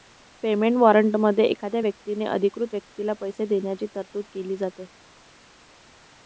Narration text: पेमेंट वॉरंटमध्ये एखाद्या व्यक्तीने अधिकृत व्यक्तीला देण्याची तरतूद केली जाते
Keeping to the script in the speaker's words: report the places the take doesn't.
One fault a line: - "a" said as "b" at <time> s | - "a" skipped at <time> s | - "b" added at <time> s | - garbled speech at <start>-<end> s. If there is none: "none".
- "पैसे" added at 3.2 s